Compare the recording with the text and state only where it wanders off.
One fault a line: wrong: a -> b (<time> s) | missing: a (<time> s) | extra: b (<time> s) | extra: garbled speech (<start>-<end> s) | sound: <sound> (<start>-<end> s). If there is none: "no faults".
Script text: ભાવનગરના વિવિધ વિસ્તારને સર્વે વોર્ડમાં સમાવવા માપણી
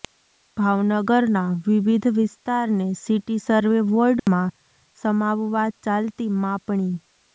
extra: સિટી (3.0 s)
sound: dropout (4.2-4.3 s)
extra: ચાલતી (5.8 s)